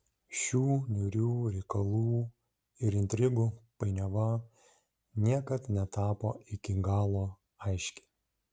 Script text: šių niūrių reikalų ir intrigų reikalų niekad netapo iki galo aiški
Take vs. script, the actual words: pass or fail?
fail